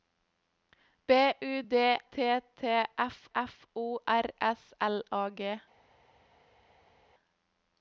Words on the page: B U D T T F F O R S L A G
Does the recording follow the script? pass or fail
pass